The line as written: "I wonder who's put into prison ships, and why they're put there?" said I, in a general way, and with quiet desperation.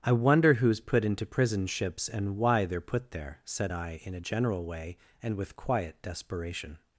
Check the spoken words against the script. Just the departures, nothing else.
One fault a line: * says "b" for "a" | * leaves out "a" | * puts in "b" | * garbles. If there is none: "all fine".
all fine